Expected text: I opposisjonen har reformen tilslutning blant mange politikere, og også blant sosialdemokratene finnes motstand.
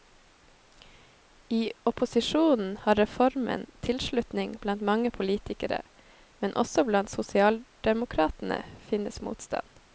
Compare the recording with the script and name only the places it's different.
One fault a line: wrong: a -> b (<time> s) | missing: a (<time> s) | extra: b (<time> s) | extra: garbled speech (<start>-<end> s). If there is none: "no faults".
wrong: og -> men (6.4 s)